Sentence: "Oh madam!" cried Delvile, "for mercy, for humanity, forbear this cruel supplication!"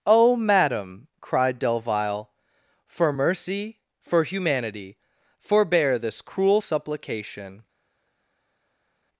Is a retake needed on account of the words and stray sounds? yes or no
no